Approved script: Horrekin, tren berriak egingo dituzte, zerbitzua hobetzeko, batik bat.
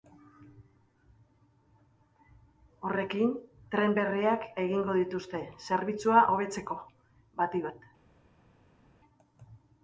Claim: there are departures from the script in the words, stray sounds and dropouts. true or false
false